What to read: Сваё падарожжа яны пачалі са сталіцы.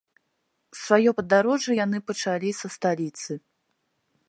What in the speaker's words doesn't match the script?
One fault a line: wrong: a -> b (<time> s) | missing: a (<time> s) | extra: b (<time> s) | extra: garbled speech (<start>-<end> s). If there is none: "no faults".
no faults